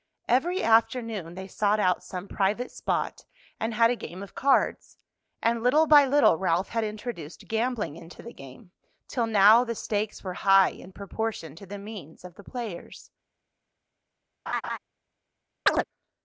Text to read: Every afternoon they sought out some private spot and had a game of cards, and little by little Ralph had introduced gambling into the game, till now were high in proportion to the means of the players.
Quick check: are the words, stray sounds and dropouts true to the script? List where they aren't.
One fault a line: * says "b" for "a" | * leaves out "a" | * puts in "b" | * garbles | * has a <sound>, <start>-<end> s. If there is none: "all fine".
* puts in "the stakes"
* has a laugh, 14.5-14.8 s
* has a chirp, 15.7-15.8 s